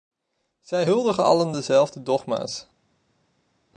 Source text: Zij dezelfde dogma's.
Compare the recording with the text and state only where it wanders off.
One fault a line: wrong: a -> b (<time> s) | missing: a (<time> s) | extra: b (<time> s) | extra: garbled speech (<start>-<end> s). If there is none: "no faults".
extra: huldigen allen (0.8 s)